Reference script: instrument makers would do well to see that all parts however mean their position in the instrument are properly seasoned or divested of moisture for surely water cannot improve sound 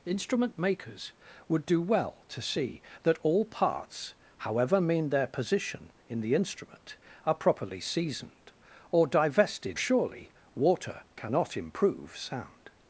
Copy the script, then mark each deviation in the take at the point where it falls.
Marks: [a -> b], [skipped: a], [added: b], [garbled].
instrument makers would do well to see that all parts however mean their position in the instrument are properly seasoned or divested [skipped: of moisture for] surely water cannot improve sound